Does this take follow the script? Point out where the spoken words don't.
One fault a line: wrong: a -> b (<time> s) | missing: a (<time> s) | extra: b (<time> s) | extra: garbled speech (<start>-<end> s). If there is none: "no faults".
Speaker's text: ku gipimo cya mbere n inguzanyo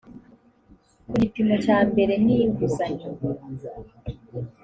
no faults